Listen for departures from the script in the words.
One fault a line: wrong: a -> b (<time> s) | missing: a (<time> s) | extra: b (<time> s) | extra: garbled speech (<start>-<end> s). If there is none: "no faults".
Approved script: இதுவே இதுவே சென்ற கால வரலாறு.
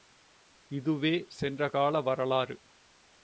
missing: இதுவே (1.3 s)